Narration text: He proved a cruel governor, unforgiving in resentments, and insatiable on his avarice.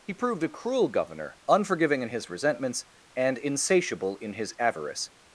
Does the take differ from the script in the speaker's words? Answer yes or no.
yes